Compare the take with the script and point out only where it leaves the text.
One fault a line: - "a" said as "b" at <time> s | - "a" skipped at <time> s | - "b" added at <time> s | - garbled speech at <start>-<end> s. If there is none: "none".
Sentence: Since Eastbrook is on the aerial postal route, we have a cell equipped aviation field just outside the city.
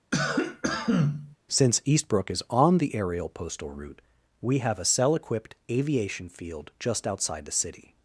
none